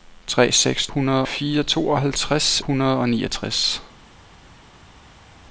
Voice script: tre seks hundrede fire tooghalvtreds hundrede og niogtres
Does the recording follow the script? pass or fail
pass